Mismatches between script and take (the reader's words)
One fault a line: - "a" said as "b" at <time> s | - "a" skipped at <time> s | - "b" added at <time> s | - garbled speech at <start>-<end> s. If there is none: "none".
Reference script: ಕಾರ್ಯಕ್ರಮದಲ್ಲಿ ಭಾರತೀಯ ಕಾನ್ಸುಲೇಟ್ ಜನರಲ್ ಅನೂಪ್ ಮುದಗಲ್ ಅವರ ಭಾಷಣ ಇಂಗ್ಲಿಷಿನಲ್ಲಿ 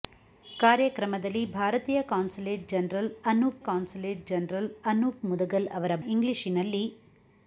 - "ಕಾನ್ಸುಲೇಟ್ ಜನರಲ್ ಅನೂಪ್" added at 3.6 s
- "ಭಾಷಣ" skipped at 5.9 s